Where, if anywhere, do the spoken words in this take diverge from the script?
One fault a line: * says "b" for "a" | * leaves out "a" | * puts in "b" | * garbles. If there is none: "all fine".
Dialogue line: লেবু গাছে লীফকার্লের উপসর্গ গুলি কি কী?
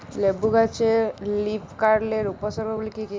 all fine